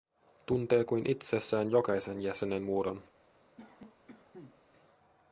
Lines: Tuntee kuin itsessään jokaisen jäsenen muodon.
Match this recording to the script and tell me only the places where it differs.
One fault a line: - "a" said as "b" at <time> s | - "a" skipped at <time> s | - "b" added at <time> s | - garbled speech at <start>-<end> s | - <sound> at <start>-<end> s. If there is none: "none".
- cough at 3.6-4.6 s